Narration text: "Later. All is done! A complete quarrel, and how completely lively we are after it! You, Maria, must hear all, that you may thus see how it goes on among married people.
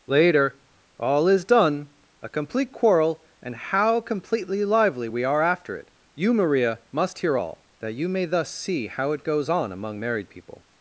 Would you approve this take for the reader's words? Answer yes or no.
yes